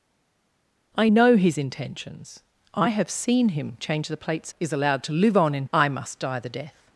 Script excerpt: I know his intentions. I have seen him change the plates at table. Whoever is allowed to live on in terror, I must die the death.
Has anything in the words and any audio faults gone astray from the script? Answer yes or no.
yes